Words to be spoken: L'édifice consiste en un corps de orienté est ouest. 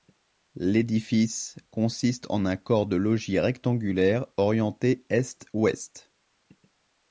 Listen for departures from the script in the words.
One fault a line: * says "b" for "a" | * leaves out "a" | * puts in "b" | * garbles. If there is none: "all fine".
* puts in "logis rectangulaire"